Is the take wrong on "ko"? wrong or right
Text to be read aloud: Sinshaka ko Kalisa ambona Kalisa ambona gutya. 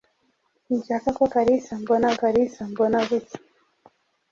right